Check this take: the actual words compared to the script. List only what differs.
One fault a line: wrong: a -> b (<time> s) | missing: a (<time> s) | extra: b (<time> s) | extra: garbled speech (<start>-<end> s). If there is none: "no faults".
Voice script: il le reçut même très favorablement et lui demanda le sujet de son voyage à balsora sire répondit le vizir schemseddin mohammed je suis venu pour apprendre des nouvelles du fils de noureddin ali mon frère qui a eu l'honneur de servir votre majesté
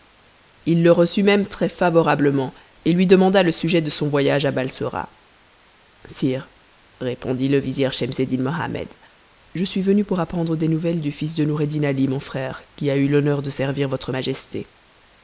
no faults